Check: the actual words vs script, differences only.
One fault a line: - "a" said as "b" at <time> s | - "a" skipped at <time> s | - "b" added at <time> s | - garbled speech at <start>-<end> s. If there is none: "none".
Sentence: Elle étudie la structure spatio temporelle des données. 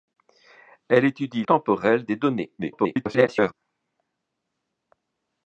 - "la structure spatio" skipped at 1.4 s
- garbled speech at 2.6-3.5 s